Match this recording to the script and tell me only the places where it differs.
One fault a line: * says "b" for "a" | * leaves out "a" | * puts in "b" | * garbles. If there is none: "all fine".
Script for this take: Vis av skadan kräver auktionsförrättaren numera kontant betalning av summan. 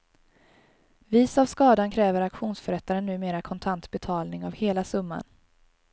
* puts in "hela"